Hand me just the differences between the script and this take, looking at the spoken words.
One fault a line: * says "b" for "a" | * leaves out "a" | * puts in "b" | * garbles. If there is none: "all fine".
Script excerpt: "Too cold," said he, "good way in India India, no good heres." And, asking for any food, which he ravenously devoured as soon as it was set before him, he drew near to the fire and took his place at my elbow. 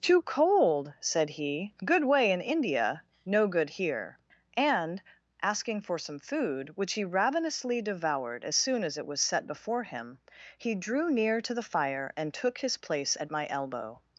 * leaves out "India"
* says "here" for "heres"
* says "some" for "any"